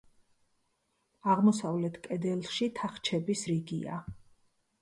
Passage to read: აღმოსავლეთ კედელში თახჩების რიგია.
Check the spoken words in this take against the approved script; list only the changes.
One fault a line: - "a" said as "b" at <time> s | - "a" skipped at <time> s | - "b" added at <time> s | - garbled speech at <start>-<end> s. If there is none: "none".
none